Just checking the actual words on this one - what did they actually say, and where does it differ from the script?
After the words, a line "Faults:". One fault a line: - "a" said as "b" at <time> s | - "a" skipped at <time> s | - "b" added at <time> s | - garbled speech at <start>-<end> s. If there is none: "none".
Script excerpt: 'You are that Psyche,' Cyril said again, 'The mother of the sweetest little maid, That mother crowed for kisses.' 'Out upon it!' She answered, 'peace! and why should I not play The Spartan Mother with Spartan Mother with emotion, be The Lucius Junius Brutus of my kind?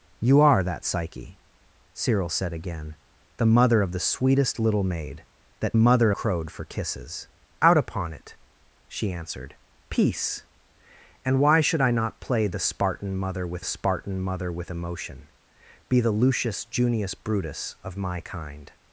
'You are that Psyche,' Cyril said again, 'The mother of the sweetest little maid, That mother crowed for kisses.' 'Out upon it!' She answered, 'peace! and why should I not play The Spartan Mother with Spartan Mother with emotion, be The Lucius Junius Brutus of my kind?
Faults:
none